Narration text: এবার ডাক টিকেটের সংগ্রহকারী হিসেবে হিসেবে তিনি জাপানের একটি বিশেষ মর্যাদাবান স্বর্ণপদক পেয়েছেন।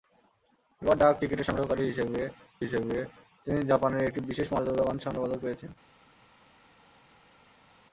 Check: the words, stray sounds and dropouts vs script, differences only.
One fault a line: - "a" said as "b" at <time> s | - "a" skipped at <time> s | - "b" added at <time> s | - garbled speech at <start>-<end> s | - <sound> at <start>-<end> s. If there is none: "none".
none